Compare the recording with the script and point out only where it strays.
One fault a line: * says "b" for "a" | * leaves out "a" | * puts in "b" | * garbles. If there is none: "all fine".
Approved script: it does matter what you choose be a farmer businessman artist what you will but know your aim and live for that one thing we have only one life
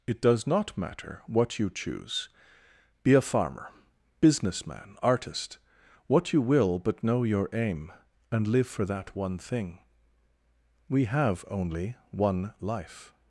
* puts in "not"